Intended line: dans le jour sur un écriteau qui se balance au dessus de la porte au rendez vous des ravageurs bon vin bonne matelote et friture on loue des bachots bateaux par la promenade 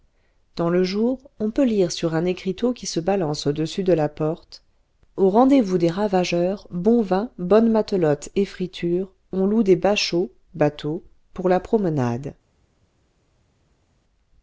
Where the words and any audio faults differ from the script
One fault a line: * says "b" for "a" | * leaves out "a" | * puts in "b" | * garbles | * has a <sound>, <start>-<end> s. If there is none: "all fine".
* puts in "on peut lire"
* says "pour" for "par"